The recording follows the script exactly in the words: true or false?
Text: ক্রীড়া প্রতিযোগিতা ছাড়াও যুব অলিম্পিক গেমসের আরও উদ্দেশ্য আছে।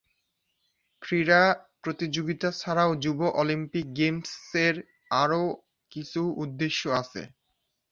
false